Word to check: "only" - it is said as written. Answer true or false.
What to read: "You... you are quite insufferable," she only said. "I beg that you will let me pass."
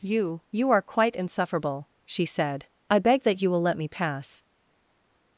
false